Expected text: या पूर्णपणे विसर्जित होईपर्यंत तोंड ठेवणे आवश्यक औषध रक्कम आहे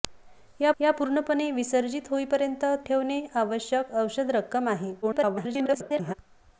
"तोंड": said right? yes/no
no